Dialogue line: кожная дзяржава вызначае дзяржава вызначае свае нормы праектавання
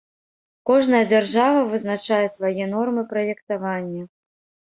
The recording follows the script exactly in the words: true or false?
false